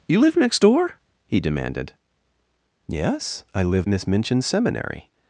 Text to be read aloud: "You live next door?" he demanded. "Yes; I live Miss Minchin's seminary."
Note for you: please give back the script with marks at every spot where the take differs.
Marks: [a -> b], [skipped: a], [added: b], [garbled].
"You live next door?" he demanded. "Yes; I live Miss Minchin's seminary."